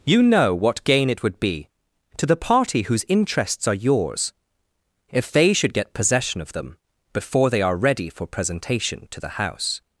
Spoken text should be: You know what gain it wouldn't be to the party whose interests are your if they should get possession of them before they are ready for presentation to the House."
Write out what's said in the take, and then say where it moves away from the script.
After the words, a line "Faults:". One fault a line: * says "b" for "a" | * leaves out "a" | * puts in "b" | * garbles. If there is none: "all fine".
You know what gain it would be to the party whose interests are yours if they should get possession of them before they are ready for presentation to the House."
Faults:
* says "would" for "wouldn't"
* says "yours" for "your"